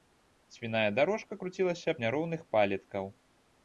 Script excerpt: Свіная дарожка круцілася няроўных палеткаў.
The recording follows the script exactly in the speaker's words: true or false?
true